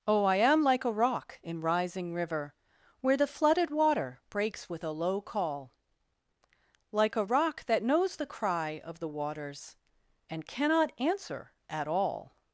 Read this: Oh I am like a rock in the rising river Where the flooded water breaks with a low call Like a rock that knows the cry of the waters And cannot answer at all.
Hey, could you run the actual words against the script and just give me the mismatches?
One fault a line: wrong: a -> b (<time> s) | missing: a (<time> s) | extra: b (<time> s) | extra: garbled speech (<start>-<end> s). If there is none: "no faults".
missing: the (1.6 s)